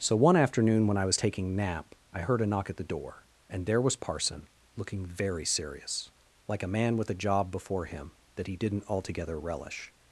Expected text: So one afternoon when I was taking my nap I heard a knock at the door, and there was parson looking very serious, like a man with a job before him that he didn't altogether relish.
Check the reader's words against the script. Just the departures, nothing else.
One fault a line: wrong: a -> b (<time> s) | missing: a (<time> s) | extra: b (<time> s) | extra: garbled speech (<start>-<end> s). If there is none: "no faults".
missing: my (1.6 s)